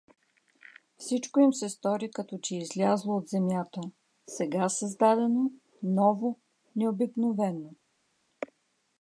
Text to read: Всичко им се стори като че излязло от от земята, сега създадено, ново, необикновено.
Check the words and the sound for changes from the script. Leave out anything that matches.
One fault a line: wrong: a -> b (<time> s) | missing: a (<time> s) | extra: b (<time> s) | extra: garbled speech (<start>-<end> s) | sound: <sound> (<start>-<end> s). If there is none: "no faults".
missing: от (3.3 s)